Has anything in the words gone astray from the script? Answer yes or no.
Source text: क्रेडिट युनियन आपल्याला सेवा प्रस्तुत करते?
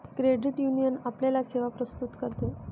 no